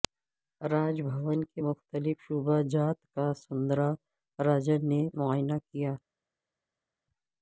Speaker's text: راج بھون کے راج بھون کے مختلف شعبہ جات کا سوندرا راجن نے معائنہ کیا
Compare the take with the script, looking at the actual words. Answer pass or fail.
fail